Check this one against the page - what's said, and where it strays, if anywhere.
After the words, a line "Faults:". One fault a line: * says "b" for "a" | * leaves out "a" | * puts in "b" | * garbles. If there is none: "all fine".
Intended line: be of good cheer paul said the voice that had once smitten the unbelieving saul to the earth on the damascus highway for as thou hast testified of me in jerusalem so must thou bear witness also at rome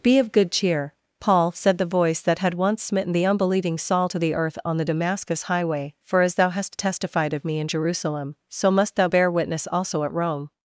be of good cheer paul said the voice that had once smitten the unbelieving saul to the earth on the damascus highway for as thou hast testified of me in jerusalem so must thou bear witness also at rome
Faults:
all fine